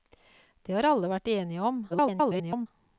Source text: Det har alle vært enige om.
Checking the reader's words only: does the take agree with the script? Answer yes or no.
no